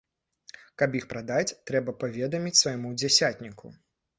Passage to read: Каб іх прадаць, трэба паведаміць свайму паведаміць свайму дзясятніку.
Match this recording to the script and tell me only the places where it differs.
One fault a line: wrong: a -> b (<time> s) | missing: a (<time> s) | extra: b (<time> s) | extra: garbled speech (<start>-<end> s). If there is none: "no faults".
missing: паведаміць свайму (2.9 s)